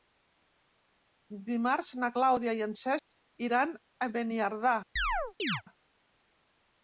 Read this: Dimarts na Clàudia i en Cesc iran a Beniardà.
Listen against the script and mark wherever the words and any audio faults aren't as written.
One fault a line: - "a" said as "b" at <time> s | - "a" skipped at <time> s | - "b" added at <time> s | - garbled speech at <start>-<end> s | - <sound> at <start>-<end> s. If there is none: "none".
- dropout at 3.0-3.1 s
- chirp at 5.0-5.6 s